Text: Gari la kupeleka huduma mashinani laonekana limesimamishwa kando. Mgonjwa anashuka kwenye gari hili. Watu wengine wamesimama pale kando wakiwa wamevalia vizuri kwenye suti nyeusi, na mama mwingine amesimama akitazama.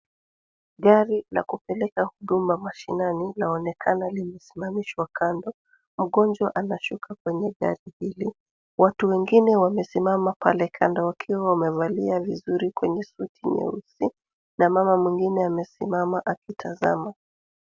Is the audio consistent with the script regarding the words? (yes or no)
yes